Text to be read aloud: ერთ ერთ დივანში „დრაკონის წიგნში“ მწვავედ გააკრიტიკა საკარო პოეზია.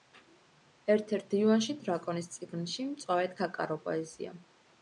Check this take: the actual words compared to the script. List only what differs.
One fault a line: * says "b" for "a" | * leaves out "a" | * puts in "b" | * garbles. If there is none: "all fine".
* leaves out "გააკრიტიკა"